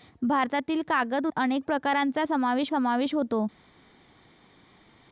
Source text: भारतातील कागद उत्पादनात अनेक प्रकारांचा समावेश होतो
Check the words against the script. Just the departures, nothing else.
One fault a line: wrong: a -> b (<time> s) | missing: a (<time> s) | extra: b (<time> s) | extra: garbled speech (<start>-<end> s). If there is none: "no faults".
missing: उत्पादनात (1.3 s)
extra: समावेश (2.7 s)